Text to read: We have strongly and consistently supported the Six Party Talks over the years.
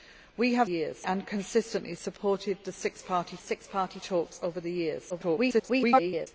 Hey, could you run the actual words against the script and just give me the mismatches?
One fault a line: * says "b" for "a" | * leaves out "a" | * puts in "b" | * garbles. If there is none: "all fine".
* says "years" for "strongly"
* puts in "Six Party"
* garbles